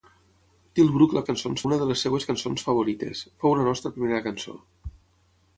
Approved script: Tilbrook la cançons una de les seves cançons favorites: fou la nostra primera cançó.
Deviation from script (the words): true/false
false